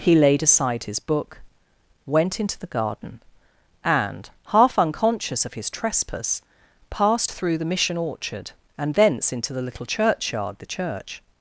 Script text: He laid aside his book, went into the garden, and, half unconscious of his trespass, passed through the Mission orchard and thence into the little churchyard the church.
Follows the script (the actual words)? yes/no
yes